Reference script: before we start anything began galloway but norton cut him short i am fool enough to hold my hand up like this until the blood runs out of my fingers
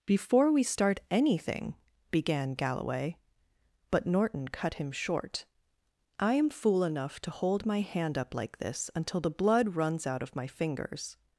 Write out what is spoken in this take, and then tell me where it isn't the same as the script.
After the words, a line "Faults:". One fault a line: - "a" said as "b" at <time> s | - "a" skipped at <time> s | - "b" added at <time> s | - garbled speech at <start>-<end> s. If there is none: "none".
before we start anything began galloway but norton cut him short i am fool enough to hold my hand up like this until the blood runs out of my fingers
Faults:
none